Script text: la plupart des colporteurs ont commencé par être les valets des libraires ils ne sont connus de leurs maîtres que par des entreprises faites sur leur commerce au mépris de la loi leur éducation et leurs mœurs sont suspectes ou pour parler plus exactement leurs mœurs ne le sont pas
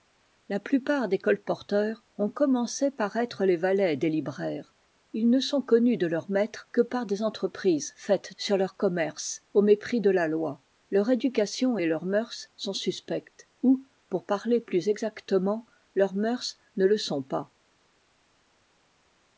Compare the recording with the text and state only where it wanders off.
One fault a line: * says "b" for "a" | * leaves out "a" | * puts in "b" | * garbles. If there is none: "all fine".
all fine